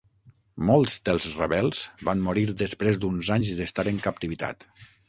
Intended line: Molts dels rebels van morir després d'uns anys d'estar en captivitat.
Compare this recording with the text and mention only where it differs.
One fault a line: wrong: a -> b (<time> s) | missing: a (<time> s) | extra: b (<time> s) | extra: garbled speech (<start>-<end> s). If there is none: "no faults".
no faults